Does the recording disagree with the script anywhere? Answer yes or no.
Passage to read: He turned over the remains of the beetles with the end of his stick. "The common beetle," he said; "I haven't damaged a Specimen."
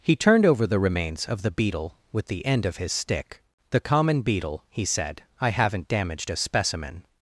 yes